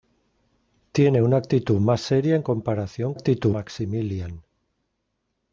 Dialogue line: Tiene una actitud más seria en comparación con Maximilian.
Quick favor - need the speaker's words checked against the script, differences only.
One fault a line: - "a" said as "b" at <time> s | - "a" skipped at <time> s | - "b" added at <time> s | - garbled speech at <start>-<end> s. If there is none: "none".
- "con" said as "actitud" at 3.1 s